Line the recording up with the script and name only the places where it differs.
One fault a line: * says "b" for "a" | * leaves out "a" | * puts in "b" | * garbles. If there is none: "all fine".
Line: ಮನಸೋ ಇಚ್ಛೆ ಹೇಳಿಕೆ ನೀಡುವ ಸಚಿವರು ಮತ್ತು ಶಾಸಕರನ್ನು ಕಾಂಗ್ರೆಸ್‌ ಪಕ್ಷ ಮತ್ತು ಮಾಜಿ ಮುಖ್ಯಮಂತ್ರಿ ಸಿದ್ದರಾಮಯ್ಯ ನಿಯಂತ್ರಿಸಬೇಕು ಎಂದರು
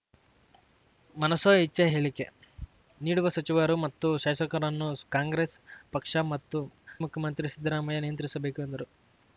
* leaves out "ಮಾಜಿ"